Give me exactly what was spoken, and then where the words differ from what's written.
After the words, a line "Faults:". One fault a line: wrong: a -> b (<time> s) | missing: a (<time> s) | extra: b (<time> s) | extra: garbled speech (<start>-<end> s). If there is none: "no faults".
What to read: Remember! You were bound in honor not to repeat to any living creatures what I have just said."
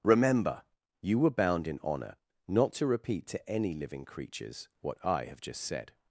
Remember! You were bound in honor not to repeat to any living creatures what I have just said."
Faults:
no faults